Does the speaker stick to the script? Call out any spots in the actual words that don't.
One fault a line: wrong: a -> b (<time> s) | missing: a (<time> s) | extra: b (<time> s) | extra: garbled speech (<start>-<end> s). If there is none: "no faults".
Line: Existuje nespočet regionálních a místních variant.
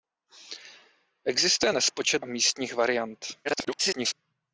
missing: regionálních (2.3 s)
extra: garbled speech (3.4-4.1 s)